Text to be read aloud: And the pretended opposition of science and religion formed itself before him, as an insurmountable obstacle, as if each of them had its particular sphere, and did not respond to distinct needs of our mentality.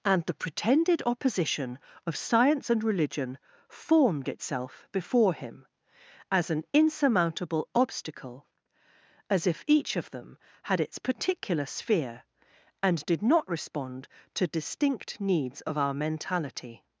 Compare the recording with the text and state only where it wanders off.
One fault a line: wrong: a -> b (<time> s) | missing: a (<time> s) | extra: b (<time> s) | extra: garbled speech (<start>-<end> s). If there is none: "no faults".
no faults